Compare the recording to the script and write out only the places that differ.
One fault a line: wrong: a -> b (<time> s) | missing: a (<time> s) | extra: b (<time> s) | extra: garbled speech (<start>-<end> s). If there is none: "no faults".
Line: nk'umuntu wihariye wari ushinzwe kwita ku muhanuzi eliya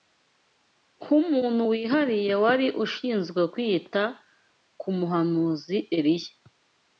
no faults